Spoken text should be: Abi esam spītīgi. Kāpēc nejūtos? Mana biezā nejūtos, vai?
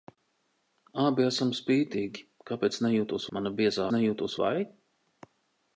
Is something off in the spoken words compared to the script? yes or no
no